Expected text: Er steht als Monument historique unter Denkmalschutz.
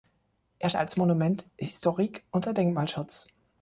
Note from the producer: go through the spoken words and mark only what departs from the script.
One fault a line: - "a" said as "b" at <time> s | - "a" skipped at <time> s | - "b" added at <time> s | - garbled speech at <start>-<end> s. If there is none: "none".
- "steht" skipped at 0.7 s